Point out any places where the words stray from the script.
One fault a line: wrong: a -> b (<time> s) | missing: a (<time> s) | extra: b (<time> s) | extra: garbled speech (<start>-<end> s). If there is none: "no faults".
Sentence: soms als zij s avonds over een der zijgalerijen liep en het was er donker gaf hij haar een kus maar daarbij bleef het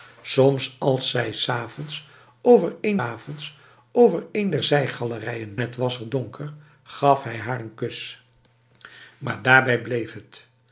extra: avonds over een (3.0 s)
missing: liep en (5.5 s)